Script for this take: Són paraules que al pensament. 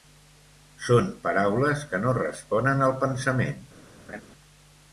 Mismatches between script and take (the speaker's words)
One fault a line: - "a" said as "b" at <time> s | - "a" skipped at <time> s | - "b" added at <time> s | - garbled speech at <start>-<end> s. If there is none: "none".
- "no responen" added at 2.1 s